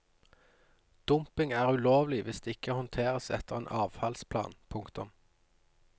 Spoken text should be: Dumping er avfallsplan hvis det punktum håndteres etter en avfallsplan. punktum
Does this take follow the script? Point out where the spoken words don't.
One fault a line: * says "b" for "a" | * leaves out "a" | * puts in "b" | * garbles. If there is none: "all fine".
* says "ulovlig" for "avfallsplan"
* says "ikke" for "punktum"